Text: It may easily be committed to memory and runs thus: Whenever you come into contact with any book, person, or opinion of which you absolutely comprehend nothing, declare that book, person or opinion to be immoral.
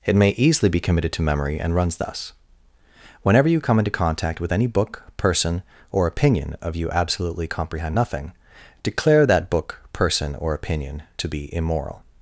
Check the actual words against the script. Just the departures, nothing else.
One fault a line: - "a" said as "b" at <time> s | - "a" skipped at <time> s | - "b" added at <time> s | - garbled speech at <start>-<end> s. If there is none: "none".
- "which" skipped at 6.8 s